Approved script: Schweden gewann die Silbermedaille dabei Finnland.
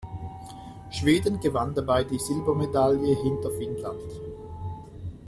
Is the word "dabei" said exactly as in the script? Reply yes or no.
no